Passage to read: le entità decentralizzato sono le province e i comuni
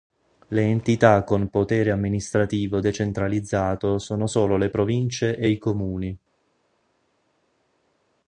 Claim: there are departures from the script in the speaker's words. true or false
true